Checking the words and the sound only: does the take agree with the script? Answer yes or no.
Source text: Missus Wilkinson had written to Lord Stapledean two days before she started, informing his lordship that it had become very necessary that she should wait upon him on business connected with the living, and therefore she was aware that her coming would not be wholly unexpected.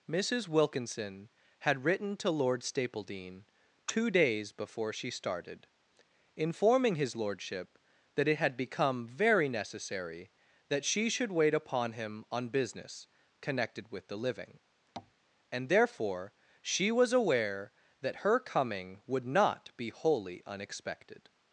no